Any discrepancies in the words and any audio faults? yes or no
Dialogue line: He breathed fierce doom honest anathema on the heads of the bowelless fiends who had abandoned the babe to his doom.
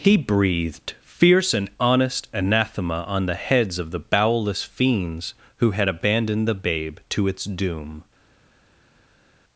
yes